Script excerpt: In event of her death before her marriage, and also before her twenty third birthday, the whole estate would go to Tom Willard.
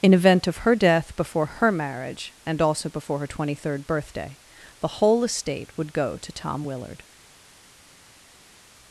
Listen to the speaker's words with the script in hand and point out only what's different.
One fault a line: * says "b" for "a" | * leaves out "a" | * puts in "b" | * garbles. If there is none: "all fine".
all fine